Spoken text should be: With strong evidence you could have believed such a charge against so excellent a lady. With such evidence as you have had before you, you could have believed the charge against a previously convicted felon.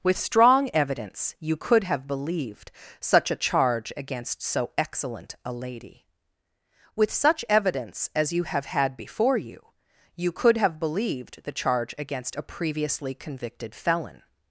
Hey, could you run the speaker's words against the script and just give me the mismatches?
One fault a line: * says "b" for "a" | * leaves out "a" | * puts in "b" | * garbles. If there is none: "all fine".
all fine